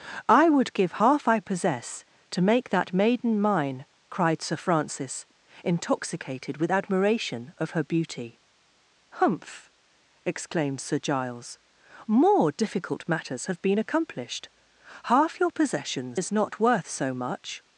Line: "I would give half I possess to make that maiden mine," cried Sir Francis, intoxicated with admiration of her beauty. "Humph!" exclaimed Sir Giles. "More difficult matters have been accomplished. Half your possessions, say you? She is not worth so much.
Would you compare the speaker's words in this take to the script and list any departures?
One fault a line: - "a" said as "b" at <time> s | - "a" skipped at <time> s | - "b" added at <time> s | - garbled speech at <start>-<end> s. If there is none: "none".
- "say you She" skipped at 16.2 s